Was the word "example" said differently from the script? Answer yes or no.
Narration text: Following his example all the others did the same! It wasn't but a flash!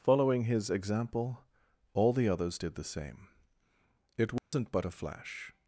no